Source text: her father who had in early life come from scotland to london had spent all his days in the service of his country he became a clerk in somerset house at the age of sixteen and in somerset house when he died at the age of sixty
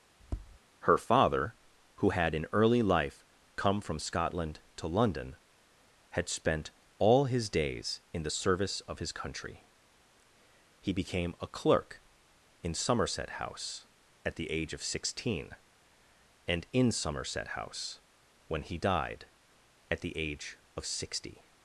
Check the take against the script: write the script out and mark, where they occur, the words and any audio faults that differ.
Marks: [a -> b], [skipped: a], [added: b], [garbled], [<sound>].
[tap] her father who had in early life come from scotland to london had spent all his days in the service of his country he became a clerk in somerset house at the age of sixteen and in somerset house when he died at the age of sixty